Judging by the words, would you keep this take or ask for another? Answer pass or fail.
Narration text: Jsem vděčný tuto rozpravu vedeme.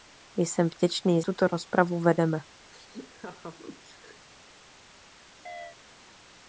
pass